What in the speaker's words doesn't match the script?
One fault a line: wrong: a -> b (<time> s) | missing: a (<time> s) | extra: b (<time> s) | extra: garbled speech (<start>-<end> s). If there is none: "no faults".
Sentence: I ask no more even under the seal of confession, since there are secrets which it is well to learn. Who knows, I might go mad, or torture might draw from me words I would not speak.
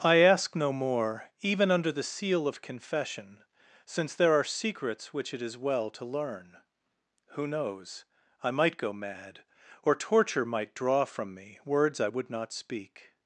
no faults